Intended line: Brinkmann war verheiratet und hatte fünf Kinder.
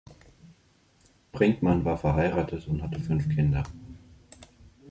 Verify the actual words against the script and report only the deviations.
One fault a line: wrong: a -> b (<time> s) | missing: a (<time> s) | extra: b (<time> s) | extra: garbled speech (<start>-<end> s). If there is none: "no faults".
no faults